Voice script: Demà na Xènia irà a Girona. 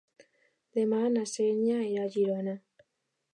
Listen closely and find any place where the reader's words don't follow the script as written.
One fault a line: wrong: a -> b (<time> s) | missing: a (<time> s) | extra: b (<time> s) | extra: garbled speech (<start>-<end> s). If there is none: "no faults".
no faults